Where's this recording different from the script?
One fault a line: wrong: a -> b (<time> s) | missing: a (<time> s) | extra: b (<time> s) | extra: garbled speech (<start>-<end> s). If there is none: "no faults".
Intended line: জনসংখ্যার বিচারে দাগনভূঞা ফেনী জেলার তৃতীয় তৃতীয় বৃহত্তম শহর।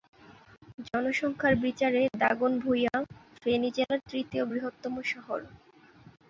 missing: তৃতীয় (4.4 s)